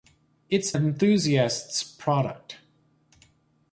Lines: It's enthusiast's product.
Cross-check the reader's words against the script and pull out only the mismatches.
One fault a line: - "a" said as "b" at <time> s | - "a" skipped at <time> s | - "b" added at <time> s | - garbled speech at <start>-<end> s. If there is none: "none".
none